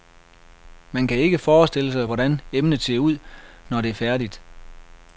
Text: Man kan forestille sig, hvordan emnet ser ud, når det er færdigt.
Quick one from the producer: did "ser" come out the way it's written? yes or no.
yes